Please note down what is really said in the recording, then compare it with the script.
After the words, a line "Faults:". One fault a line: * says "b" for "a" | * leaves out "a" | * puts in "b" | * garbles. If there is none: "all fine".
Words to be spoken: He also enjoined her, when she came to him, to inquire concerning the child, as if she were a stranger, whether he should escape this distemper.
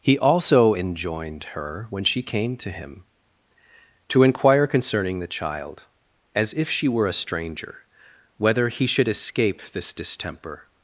He also enjoined her, when she came to him, to inquire concerning the child, as if she were a stranger, whether he should escape this distemper.
Faults:
all fine